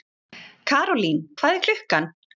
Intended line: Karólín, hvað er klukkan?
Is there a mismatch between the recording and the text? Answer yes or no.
no